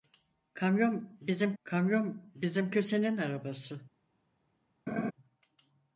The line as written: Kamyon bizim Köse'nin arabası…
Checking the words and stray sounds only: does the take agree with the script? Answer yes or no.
no